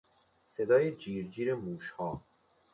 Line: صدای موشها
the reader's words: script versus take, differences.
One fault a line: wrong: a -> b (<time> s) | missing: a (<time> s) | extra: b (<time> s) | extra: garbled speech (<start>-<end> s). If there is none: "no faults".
extra: جیر جیر (0.9 s)